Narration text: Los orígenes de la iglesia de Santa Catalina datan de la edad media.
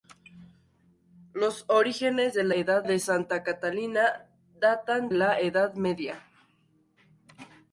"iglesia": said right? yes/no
no